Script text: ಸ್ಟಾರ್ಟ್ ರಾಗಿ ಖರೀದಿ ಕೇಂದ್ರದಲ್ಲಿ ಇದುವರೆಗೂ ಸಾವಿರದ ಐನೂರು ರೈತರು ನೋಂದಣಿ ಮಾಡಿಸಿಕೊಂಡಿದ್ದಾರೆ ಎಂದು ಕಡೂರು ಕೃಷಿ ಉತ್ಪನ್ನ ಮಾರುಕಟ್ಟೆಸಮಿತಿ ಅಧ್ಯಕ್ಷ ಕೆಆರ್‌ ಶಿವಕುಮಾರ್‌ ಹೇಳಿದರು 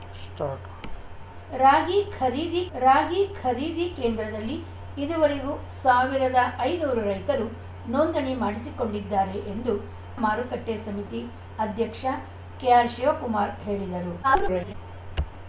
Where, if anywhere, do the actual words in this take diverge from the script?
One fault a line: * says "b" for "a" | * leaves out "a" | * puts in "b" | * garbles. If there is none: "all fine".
* puts in "ರಾಗಿ ಖರೀದಿ"
* leaves out "ಕಡೂರು ಕೃಷಿ ಉತ್ಪನ್ನ"
* garbles